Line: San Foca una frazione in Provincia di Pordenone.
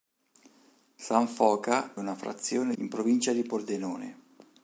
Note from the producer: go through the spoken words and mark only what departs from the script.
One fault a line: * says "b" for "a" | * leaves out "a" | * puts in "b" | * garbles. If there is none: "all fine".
all fine